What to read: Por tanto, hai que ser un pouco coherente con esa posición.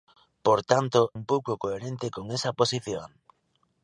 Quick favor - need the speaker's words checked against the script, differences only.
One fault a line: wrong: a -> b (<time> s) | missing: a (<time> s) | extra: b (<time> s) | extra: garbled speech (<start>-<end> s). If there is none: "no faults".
missing: hai que ser (1.0 s)